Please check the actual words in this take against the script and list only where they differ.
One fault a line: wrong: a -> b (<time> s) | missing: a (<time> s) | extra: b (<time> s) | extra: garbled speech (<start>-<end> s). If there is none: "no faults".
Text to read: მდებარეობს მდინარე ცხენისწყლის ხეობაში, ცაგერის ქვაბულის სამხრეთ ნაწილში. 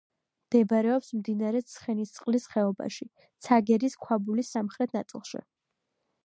no faults